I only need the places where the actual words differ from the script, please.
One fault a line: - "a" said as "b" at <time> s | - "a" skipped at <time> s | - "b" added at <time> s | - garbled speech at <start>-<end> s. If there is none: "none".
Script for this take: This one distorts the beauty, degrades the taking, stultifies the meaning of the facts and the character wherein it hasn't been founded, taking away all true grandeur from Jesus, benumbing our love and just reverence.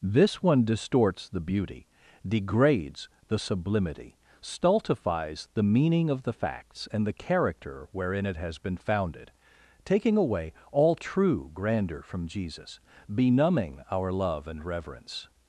- "taking" said as "sublimity" at 3.4 s
- "hasn't" said as "has" at 8.4 s
- "just" skipped at 14.6 s